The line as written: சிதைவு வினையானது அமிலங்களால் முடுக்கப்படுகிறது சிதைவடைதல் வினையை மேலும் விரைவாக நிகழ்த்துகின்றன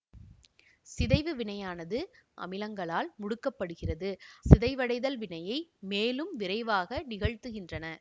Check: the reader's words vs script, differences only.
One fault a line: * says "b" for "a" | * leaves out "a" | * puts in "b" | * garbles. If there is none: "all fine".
all fine